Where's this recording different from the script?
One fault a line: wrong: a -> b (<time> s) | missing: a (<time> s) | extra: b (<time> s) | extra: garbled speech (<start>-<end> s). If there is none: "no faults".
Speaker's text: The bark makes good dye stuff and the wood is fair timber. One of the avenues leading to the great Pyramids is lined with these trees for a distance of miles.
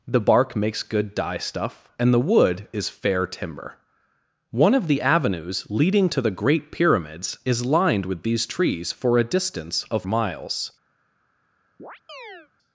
no faults